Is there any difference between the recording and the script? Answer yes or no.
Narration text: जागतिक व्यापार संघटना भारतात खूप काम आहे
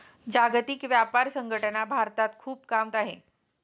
no